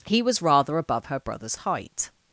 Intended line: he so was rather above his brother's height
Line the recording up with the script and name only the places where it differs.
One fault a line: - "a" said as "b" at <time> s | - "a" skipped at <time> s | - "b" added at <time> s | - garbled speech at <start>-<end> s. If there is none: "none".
- "so" skipped at 0.2 s
- "his" said as "her" at 1.0 s